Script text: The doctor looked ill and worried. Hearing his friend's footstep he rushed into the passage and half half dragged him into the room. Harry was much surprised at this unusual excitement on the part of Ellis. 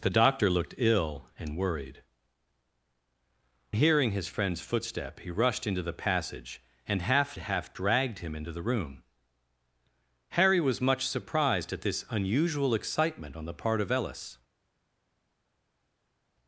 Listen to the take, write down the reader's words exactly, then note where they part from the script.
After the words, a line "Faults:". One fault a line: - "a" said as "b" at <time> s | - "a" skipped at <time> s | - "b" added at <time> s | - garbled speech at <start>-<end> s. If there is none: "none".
The doctor looked ill and worried. Hearing his friend's footstep he rushed into the passage and half half dragged him into the room. Harry was much surprised at this unusual excitement on the part of Ellis.
Faults:
none